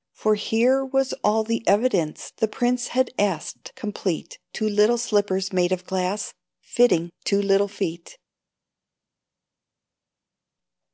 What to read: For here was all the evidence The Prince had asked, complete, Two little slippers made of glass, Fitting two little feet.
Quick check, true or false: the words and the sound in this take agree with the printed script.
true